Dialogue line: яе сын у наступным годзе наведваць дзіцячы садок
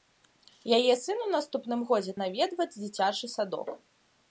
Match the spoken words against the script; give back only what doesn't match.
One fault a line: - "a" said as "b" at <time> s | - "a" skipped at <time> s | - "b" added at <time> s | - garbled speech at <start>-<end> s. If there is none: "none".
none